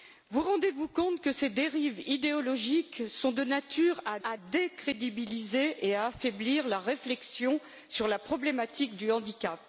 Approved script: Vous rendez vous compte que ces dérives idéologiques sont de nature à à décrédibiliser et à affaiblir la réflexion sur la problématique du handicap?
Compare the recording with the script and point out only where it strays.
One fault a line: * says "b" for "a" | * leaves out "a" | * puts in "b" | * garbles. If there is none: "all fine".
all fine